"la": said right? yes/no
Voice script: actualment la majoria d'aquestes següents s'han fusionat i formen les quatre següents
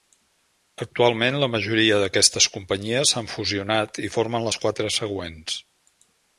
yes